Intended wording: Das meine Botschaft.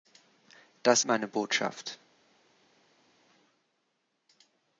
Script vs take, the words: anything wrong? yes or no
no